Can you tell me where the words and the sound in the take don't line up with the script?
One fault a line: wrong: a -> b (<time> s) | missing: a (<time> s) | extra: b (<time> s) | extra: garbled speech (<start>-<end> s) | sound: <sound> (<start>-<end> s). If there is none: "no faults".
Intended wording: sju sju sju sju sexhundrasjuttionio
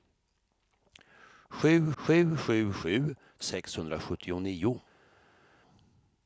no faults